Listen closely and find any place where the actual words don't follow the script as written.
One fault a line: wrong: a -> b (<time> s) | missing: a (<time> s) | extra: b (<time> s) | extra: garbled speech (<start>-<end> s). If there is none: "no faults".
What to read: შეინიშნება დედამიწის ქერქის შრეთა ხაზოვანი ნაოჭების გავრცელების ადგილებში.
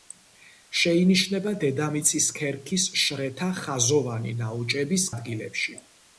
missing: გავრცელების (5.1 s)